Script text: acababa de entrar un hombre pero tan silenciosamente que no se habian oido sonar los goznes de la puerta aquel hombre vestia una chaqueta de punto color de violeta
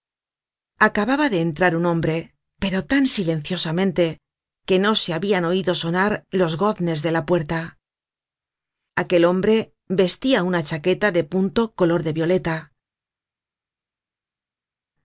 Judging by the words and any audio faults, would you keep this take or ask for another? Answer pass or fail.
pass